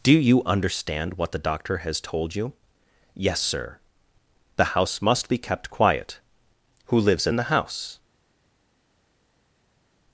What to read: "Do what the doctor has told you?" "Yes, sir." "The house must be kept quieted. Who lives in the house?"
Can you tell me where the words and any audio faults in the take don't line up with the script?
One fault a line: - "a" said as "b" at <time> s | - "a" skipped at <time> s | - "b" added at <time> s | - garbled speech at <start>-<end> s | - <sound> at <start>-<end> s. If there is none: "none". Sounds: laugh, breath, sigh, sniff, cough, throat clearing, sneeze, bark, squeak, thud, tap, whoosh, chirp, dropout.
- "you understand" added at 0.1 s
- "quieted" said as "quiet" at 5.7 s